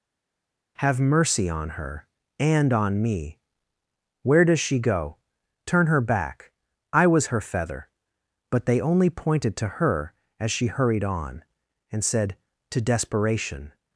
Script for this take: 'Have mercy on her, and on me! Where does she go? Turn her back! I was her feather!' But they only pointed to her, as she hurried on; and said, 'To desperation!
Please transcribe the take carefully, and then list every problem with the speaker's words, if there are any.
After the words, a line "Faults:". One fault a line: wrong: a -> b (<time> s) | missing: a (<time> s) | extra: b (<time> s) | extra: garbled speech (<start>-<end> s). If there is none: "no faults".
'Have mercy on her, and on me! Where does she go? Turn her back! I was her feather!' But they only pointed to her, as she hurried on; and said, 'To desperation!
Faults:
no faults